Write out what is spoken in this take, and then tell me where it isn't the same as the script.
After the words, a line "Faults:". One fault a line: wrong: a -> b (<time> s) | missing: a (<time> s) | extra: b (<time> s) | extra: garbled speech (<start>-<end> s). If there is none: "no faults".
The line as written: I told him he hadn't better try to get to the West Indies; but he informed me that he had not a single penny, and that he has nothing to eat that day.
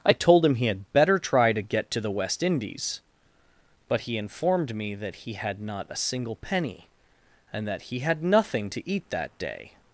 I told him he had better try to get to the West Indies; but he informed me that he had not a single penny, and that he had nothing to eat that day.
Faults:
wrong: hadn't -> had (0.7 s)
wrong: has -> had (8.0 s)